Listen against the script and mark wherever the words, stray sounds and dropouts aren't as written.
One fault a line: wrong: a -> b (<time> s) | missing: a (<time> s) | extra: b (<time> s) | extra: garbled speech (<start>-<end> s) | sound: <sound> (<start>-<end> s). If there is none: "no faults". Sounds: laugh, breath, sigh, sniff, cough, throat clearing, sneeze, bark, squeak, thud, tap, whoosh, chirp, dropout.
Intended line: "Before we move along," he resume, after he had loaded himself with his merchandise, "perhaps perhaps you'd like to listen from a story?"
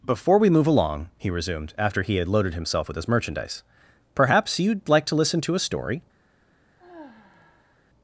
wrong: resume -> resumed (1.3 s)
missing: perhaps (4.6 s)
wrong: from -> to (5.4 s)
sound: sigh (6.8-7.8 s)